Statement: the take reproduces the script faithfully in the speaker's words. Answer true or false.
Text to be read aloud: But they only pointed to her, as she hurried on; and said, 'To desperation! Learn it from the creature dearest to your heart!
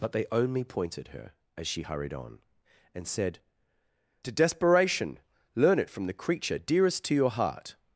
false